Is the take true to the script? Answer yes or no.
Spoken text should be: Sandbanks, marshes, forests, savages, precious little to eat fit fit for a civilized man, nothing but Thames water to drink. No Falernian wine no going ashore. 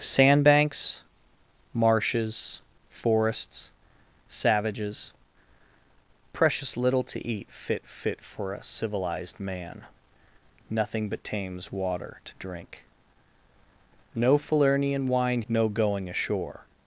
yes